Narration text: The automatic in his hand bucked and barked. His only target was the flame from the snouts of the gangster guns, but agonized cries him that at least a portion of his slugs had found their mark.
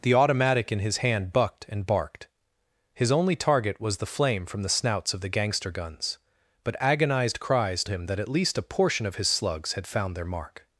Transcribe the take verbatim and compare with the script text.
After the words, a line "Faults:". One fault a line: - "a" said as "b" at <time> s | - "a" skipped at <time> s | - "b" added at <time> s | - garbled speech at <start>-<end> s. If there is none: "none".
The automatic in his hand bucked and barked. His only target was the flame from the snouts of the gangster guns, but agonized cries him that at least a portion of his slugs had found their mark.
Faults:
none